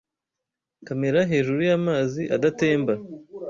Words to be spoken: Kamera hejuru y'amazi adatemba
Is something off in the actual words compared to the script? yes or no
no